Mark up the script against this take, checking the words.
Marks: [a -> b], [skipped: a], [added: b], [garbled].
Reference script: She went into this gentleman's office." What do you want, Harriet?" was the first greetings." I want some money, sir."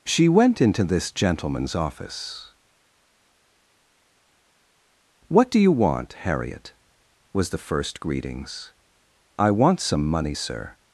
She went into this gentleman's office." What do you want, Harriet?" was the first greetings." I want some money, sir."